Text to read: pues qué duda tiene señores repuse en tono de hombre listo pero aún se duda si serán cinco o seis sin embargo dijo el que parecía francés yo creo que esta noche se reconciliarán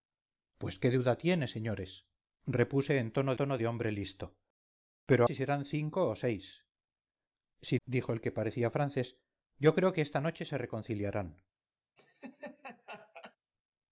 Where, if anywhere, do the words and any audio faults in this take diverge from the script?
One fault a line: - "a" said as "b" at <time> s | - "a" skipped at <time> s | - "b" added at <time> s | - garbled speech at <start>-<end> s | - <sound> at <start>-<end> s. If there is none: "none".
- "tono" added at 3.3 s
- "aún se duda" skipped at 5.2 s
- "embargo" skipped at 7.8 s
- laugh at 12.0-13.4 s